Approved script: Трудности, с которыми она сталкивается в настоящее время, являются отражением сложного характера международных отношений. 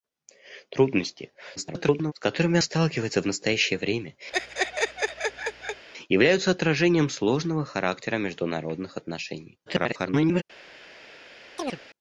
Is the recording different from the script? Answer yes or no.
yes